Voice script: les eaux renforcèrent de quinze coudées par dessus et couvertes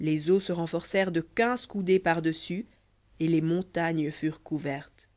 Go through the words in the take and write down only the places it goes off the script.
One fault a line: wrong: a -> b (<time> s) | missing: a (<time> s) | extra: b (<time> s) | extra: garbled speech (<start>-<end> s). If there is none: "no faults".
extra: se (0.4 s)
extra: les montagnes furent (3.3 s)